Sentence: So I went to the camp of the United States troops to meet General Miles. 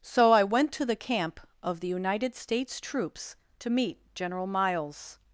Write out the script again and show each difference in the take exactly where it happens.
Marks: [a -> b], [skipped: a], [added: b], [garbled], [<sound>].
So I went to the camp of the United States troops to meet General Miles.